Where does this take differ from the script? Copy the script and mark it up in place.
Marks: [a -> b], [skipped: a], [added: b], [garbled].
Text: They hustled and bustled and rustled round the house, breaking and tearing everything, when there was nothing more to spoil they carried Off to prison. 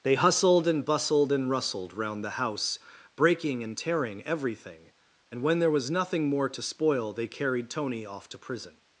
They hustled and bustled and rustled round the house, breaking and tearing everything, [added: and] when there was nothing more to spoil they carried [added: Tony] Off to prison.